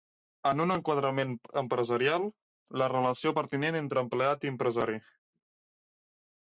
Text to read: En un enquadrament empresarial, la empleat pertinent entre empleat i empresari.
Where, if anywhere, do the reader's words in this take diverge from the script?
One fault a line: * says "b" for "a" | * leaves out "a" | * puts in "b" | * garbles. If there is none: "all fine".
* says "relació" for "empleat"